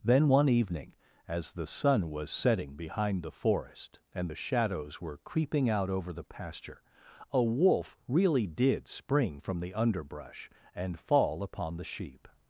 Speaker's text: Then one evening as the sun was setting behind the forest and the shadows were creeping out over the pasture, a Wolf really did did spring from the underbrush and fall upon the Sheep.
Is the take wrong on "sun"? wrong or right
right